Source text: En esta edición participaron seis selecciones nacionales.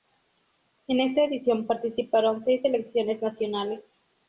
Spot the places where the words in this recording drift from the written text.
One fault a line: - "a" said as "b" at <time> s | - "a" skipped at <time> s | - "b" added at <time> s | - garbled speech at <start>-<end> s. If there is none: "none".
none